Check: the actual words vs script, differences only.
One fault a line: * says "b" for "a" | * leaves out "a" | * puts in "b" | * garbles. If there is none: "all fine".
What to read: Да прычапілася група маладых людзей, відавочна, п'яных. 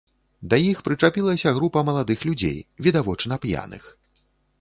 * puts in "іх"